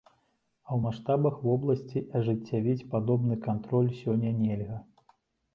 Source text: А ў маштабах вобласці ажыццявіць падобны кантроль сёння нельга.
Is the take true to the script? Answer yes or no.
yes